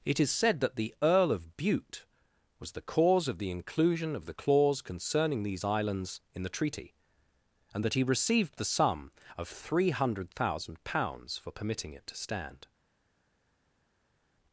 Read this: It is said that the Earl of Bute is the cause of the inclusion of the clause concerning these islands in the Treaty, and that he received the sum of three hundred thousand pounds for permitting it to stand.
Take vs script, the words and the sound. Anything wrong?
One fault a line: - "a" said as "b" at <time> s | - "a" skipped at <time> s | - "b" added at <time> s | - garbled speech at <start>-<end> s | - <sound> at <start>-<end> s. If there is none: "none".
- "is" said as "was" at 2.6 s